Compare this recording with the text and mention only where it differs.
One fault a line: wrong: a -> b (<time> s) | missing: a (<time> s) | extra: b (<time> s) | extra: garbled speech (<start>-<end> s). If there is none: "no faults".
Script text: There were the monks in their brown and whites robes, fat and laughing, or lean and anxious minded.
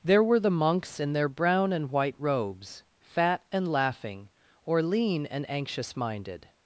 wrong: whites -> white (1.9 s)